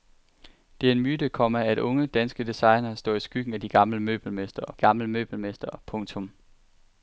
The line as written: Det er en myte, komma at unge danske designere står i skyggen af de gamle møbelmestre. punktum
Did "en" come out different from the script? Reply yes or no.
no